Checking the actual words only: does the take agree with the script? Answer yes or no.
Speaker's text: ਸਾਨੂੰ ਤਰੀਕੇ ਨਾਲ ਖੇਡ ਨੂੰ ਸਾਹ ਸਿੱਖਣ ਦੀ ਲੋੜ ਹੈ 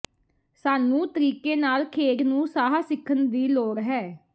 yes